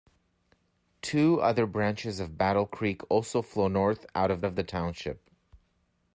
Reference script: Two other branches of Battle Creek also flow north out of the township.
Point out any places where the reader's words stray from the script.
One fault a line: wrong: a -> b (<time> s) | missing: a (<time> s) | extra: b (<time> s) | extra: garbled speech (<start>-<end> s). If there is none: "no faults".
extra: of (4.5 s)